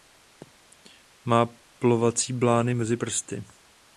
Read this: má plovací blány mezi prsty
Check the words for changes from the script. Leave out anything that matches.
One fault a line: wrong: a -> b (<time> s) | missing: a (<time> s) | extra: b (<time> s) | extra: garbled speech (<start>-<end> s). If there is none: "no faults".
no faults